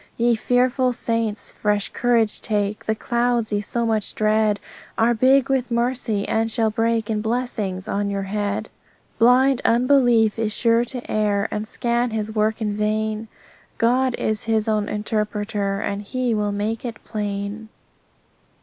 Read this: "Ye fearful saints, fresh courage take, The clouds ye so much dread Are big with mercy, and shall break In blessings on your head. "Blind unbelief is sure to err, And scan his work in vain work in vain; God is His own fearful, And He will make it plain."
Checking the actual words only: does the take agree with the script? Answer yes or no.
no